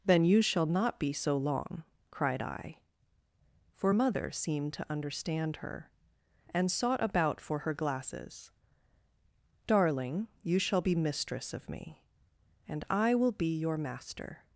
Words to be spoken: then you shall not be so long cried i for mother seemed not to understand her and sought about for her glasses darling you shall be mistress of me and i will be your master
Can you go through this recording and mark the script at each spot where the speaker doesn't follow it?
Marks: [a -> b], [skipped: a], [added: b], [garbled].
then you shall not be so long cried i for mother seemed [skipped: not] to understand her and sought about for her glasses darling you shall be mistress of me and i will be your master